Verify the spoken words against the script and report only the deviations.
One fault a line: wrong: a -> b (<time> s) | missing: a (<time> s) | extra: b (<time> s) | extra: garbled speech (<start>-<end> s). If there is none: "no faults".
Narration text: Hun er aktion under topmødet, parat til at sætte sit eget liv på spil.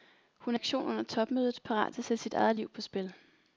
no faults